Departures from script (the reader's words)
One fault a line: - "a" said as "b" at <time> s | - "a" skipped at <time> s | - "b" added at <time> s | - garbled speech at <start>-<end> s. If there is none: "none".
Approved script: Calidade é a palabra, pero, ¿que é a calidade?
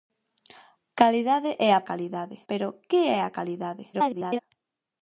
- "palabra" said as "calidade" at 1.9 s
- garbled speech at 3.9-4.4 s